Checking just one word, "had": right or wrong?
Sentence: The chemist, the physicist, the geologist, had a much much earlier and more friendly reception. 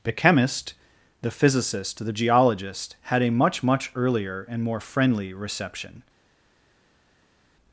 right